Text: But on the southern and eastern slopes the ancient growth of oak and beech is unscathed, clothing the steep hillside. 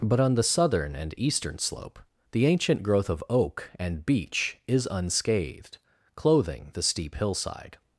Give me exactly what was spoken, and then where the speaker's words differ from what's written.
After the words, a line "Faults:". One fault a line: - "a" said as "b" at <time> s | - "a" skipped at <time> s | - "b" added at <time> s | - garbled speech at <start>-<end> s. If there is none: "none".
But on the southern and eastern slope the ancient growth of oak and beech is unscathed, clothing the steep hillside.
Faults:
- "slopes" said as "slope" at 1.6 s